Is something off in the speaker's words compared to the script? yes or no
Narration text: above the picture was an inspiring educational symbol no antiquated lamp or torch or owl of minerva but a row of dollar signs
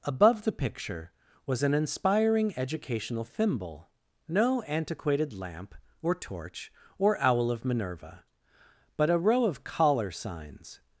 yes